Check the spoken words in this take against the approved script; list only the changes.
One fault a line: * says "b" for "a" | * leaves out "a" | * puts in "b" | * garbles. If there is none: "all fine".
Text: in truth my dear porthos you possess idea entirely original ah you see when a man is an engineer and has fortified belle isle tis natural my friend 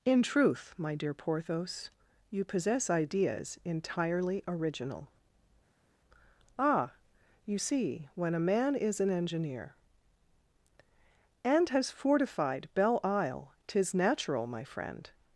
* says "ideas" for "idea"